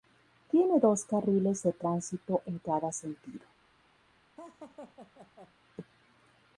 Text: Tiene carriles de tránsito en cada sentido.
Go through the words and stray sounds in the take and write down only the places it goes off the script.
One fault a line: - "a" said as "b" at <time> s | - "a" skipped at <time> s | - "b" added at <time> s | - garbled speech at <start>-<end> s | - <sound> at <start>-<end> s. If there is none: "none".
- "dos" added at 0.8 s
- laugh at 4.4-5.5 s